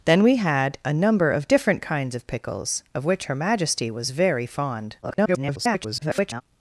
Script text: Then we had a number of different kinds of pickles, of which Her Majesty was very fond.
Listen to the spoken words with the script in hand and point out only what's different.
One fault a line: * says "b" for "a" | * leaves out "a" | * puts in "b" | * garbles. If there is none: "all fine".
* garbles